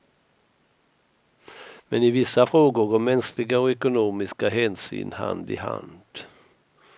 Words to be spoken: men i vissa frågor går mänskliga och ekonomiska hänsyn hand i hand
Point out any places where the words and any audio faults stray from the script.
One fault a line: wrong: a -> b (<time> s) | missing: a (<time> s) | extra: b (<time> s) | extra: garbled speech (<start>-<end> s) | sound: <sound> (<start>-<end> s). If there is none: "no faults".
no faults